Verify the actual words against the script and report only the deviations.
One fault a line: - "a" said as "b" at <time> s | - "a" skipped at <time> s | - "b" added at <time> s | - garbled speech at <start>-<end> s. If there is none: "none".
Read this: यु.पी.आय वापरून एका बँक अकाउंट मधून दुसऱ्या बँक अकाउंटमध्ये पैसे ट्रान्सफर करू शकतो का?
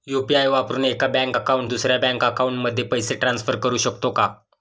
- "मधून" skipped at 1.7 s